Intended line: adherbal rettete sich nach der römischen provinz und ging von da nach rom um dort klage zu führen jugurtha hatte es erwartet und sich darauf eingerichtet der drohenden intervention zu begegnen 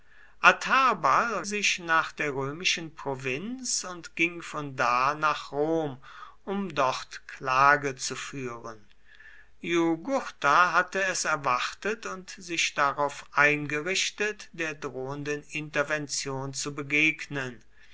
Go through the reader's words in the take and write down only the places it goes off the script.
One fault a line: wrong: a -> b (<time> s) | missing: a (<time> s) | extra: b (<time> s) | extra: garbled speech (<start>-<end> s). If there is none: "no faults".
missing: rettete (1.4 s)